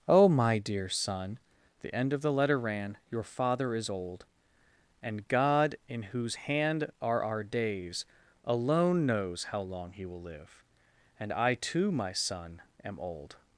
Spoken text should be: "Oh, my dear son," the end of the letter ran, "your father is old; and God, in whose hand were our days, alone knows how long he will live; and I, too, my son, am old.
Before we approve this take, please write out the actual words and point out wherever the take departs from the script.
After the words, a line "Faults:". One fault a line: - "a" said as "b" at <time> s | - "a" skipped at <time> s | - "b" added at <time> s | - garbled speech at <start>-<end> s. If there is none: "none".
"Oh, my dear son," the end of the letter ran, "your father is old; and God, in whose hand are our days, alone knows how long he will live; and I, too, my son, am old.
Faults:
- "were" said as "are" at 7.0 s